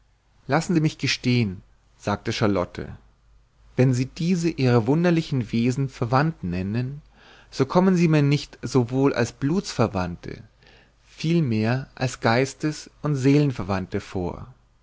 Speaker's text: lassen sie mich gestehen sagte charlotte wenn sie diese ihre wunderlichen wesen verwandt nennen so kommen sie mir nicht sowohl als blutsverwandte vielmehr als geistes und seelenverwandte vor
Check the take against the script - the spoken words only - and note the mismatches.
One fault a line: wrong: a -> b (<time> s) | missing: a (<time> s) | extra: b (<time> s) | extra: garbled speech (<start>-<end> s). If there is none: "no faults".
no faults